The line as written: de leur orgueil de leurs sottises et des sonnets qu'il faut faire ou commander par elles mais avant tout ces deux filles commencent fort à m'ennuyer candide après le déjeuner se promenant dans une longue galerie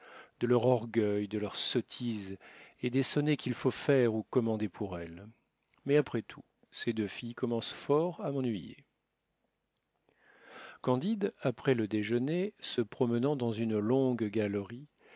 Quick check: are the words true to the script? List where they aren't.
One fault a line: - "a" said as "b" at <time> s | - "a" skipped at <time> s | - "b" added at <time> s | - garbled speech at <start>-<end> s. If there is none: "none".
- "par" said as "pour" at 4.7 s
- "avant" said as "après" at 6.0 s